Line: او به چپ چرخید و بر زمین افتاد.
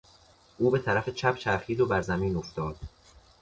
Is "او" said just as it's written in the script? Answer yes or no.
yes